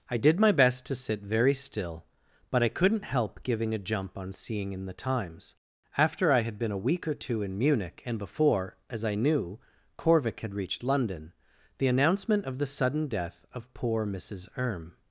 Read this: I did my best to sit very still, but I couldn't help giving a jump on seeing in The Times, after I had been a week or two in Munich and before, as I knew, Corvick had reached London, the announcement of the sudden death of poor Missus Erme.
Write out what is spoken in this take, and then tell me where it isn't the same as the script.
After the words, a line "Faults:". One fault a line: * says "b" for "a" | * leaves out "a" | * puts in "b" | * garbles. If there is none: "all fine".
I did my best to sit very still, but I couldn't help giving a jump on seeing in The Times, after I had been a week or two in Munich and before, as I knew, Corvick had reached London, the announcement of the sudden death of poor Missus Erme.
Faults:
all fine